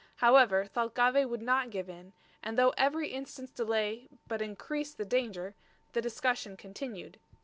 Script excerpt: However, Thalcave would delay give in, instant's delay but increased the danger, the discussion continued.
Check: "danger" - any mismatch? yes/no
no